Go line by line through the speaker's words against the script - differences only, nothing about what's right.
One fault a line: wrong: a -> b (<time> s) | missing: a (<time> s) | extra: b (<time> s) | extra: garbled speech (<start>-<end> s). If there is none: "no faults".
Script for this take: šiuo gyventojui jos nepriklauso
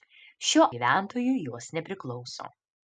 no faults